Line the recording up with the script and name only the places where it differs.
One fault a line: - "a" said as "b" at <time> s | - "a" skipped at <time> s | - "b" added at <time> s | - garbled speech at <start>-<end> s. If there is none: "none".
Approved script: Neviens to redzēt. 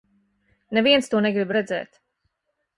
- "negrib" added at 1.3 s